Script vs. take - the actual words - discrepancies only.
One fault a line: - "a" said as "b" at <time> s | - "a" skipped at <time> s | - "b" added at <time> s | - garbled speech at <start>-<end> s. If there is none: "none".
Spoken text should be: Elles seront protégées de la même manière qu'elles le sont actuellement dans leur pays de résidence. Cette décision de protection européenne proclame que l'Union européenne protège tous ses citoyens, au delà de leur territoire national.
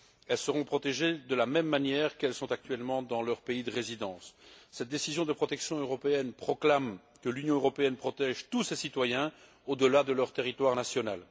none